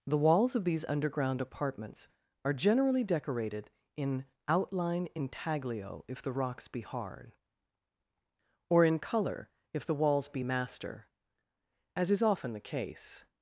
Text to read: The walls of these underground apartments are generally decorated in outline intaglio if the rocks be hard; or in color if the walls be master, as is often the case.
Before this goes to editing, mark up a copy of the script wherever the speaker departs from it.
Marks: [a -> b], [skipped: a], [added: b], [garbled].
The walls of these underground apartments are generally decorated in outline intaglio if the rocks be hard; or in color if the walls be master, as is often the case.